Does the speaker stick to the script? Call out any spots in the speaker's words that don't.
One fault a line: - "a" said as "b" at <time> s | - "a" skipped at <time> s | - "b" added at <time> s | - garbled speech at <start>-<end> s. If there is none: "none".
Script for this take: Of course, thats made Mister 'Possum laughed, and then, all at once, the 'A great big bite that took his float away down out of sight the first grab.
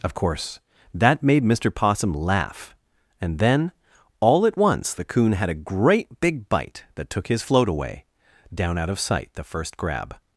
- "thats" said as "that" at 0.9 s
- "laughed" said as "laugh" at 2.1 s
- "Coon had" added at 5.0 s